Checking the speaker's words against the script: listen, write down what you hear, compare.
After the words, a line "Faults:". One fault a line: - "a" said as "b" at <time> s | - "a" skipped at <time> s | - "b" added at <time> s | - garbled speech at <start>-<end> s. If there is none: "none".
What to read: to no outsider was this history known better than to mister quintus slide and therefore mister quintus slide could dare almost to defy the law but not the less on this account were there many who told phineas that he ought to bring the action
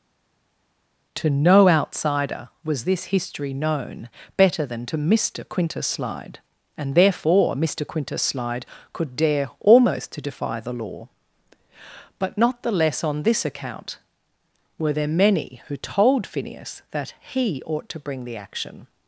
to no outsider was this history known better than to mister quintus slide and therefore mister quintus slide could dare almost to defy the law but not the less on this account were there many who told phineas that he ought to bring the action
Faults:
none